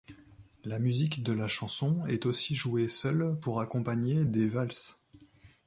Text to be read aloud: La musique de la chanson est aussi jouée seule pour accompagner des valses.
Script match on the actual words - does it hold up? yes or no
yes